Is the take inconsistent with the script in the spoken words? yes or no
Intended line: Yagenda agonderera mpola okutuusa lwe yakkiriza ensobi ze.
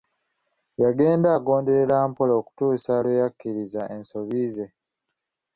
no